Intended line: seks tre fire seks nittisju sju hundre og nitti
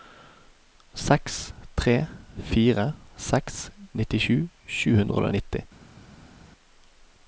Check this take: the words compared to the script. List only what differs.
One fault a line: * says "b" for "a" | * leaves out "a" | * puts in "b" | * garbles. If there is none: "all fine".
all fine